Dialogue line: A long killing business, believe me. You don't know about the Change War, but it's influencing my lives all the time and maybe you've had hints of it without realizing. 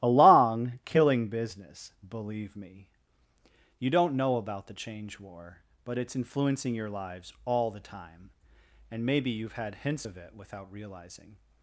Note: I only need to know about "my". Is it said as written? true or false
false